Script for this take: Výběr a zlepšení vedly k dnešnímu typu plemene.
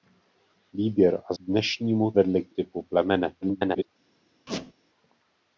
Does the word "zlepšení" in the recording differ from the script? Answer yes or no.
yes